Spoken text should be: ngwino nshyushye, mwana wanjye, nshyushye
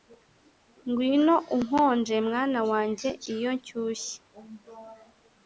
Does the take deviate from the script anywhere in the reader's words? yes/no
yes